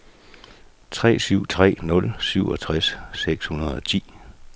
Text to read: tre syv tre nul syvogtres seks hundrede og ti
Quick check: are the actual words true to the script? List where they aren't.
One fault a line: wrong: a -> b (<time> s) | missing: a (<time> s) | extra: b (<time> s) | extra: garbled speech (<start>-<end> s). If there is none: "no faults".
no faults